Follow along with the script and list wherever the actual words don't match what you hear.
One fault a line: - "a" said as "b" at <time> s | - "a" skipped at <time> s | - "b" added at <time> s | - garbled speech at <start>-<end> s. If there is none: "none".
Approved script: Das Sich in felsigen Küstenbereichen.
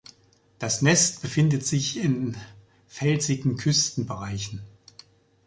- "Nest befindet" added at 0.8 s